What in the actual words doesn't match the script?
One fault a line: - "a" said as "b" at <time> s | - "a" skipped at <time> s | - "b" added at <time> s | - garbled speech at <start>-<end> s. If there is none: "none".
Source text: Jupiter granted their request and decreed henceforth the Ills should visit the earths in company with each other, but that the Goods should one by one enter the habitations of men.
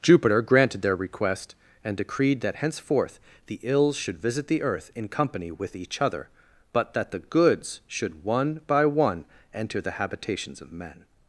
- "that" added at 2.4 s
- "earths" said as "earth" at 4.6 s